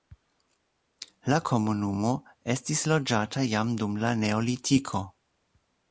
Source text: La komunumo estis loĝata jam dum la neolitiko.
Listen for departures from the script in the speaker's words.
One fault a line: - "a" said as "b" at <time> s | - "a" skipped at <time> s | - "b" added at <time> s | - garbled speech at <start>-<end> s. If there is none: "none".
none